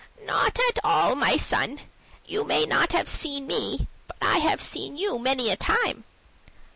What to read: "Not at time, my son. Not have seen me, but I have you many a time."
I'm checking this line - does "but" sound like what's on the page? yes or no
yes